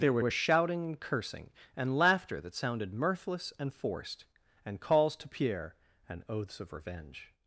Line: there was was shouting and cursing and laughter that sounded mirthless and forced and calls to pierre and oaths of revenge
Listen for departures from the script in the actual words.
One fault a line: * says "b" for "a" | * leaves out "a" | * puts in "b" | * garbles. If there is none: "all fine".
all fine